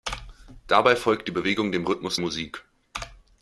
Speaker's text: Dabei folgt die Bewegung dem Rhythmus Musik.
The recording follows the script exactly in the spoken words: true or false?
true